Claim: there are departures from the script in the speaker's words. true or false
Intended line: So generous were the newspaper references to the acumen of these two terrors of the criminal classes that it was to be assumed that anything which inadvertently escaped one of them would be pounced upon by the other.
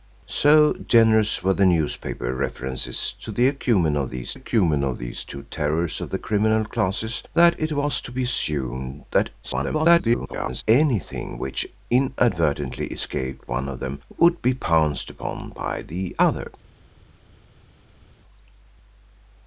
true